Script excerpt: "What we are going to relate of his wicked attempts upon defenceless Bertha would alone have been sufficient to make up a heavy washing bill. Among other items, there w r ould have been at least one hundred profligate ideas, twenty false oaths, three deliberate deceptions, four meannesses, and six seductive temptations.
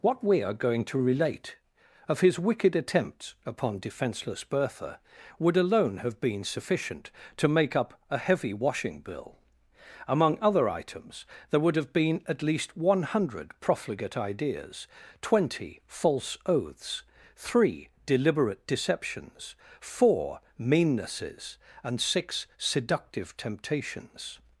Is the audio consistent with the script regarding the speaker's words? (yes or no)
no